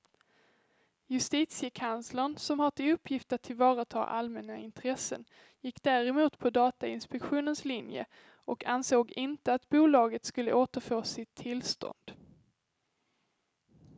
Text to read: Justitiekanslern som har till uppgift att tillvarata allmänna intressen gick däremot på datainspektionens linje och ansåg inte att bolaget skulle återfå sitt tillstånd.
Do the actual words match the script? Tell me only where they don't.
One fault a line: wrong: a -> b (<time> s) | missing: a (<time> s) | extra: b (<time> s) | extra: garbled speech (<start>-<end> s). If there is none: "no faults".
no faults